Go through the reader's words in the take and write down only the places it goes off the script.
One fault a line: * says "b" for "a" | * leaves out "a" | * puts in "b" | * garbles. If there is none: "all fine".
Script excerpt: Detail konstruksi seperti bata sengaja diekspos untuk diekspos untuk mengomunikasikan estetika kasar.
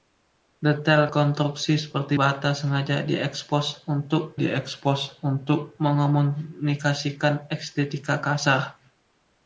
all fine